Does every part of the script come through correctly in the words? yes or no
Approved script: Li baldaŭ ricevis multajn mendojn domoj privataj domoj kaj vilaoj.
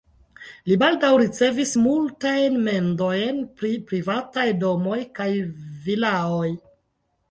no